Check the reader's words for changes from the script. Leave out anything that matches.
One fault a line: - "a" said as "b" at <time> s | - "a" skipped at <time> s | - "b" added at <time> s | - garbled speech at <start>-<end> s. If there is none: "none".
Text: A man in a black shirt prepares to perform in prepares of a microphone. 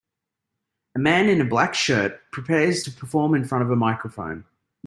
- "prepares" said as "front" at 3.4 s